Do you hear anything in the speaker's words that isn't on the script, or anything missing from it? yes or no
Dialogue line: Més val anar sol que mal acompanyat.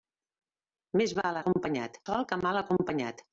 yes